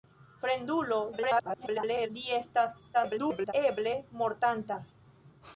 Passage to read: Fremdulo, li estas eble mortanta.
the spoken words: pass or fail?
fail